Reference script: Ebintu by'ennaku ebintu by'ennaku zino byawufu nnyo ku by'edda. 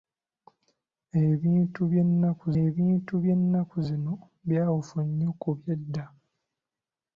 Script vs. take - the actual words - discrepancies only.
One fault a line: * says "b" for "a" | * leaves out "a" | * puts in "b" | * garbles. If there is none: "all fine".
all fine